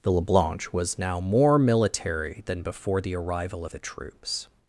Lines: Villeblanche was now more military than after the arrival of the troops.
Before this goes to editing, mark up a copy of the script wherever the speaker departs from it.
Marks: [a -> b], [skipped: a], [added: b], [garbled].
Villeblanche was now more military than [after -> before] the arrival of the troops.